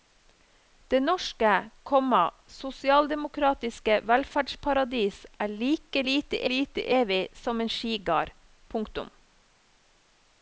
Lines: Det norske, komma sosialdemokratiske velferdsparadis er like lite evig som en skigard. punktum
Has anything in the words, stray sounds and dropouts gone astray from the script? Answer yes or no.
yes